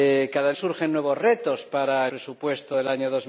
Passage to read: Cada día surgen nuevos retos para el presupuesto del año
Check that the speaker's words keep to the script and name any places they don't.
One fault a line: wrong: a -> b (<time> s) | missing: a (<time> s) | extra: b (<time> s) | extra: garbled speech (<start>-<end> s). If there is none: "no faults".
missing: día (0.5 s)
missing: el (2.1 s)